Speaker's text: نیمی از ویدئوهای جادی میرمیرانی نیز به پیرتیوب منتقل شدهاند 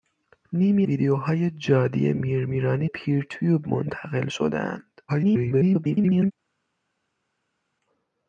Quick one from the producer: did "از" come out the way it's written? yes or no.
no